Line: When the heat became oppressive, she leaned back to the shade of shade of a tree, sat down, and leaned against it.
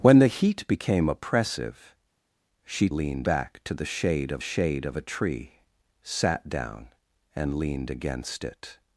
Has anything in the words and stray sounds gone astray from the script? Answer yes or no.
no